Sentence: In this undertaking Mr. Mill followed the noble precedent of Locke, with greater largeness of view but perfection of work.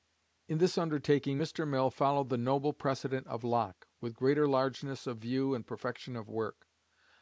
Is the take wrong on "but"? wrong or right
wrong